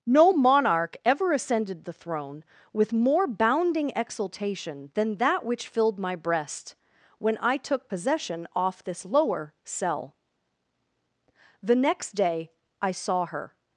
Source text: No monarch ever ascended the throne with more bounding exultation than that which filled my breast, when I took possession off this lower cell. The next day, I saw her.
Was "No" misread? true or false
false